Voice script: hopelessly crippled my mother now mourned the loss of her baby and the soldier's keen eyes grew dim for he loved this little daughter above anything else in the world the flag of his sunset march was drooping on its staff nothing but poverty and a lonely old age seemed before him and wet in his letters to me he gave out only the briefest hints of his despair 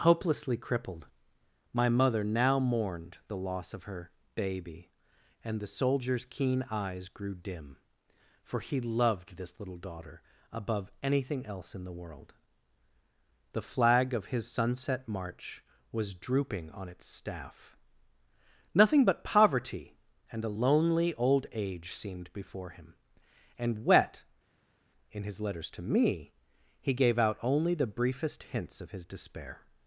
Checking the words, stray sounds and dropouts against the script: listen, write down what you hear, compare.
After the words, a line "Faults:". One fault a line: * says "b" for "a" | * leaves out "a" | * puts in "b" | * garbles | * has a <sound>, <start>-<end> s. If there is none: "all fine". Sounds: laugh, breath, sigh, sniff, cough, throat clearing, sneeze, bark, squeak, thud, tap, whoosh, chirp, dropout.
hopelessly crippled my mother now mourned the loss of her baby and the soldier's keen eyes grew dim for he loved this little daughter above anything else in the world the flag of his sunset march was drooping on its staff nothing but poverty and a lonely old age seemed before him and wet in his letters to me he gave out only the briefest hints of his despair
Faults:
all fine